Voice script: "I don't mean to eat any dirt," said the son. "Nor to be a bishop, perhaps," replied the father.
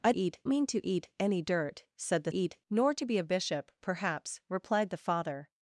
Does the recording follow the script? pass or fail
fail